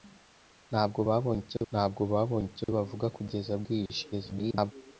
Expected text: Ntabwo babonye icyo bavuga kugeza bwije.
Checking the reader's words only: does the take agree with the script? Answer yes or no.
no